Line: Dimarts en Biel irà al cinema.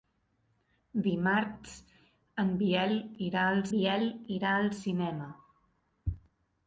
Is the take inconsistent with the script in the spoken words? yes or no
yes